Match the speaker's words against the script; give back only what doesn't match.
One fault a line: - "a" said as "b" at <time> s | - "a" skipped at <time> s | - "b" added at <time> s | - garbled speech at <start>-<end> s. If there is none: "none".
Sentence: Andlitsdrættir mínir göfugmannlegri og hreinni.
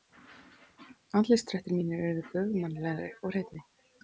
- "urðu" added at 2.1 s